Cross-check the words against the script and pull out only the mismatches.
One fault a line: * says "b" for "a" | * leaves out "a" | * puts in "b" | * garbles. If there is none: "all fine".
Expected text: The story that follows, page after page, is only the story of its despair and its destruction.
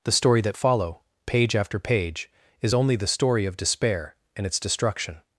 * says "follow" for "follows"
* leaves out "its"